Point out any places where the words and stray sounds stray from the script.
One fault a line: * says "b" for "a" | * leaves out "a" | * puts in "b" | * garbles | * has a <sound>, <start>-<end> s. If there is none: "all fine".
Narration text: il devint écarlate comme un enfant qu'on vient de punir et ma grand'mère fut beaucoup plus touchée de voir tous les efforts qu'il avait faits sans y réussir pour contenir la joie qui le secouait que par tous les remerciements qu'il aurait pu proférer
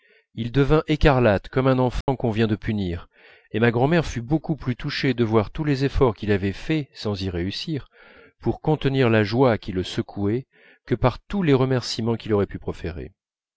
* has a dropout, 2.0-2.1 s